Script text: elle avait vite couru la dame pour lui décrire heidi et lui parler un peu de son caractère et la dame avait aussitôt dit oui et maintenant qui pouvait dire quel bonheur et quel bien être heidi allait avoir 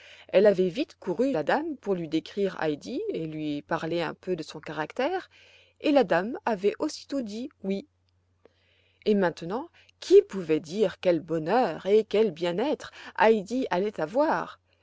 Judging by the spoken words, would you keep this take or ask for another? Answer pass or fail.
pass